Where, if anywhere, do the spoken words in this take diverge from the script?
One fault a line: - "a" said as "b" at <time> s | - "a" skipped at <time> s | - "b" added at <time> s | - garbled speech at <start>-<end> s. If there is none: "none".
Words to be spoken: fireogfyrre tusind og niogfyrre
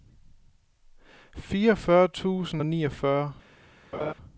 none